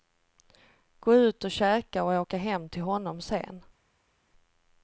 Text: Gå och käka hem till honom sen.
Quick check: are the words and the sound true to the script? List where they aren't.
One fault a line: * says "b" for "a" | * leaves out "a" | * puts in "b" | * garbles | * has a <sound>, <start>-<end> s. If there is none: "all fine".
* puts in "ut"
* puts in "och åka"